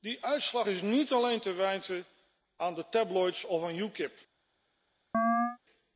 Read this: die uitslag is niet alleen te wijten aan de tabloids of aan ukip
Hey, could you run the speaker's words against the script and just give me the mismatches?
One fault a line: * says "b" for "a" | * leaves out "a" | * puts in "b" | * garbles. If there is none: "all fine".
all fine